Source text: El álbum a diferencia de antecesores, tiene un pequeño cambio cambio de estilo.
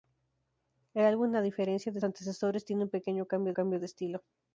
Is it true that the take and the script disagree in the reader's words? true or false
false